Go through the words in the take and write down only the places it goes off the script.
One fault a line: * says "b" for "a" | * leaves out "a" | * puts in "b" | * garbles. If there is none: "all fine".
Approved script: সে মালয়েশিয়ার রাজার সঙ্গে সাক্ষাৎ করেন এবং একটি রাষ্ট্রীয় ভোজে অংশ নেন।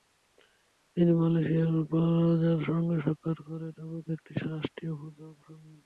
* says "তিনি" for "সে"